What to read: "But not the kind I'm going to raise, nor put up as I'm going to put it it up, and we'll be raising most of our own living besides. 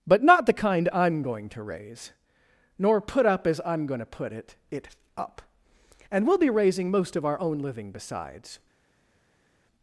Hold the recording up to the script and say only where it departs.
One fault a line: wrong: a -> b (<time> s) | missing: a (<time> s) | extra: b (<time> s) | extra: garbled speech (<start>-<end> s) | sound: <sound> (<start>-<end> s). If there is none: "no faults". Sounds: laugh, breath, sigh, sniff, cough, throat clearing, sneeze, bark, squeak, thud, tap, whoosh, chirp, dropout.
no faults